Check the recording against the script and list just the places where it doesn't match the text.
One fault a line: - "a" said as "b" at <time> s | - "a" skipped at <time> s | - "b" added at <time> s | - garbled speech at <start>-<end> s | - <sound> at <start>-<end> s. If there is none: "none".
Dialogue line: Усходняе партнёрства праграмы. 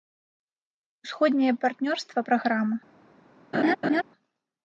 - laugh at 3.5-4.0 s